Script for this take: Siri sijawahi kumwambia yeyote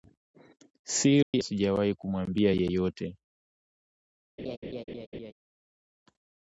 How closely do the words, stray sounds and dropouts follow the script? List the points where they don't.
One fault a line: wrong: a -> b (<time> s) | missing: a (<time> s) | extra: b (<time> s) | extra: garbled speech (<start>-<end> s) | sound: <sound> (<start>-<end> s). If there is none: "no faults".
sound: dropout (1.2-1.3 s)
sound: laugh (4.4-5.3 s)